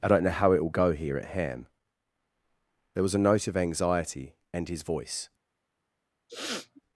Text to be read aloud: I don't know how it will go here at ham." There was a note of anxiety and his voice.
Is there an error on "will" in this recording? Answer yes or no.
no